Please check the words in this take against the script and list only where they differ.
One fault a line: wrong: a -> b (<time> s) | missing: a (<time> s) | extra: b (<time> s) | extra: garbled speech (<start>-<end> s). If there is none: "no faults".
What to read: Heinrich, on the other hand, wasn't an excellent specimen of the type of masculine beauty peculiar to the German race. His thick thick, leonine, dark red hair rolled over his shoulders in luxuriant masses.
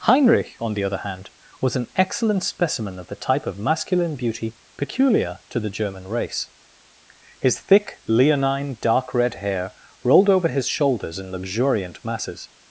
wrong: wasn't -> was (1.6 s)
missing: thick (8.0 s)